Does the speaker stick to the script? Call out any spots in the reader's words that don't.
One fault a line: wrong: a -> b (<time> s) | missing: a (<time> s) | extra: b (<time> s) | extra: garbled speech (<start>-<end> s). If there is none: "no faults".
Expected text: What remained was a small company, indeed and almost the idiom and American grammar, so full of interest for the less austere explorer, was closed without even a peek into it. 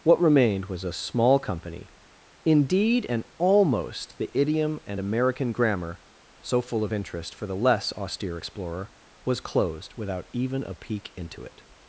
no faults